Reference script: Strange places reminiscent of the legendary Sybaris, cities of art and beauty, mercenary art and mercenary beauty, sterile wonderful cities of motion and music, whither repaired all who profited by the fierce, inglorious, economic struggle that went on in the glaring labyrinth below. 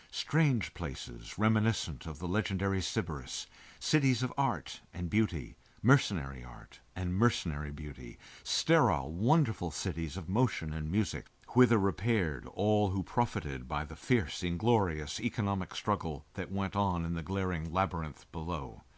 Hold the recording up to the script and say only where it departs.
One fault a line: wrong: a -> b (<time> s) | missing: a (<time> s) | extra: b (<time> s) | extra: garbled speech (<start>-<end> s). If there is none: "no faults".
no faults